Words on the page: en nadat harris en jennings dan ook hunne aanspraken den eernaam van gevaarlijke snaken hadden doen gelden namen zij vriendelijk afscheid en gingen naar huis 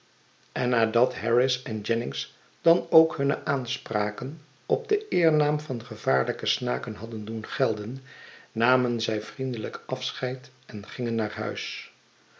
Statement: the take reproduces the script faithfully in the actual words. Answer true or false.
false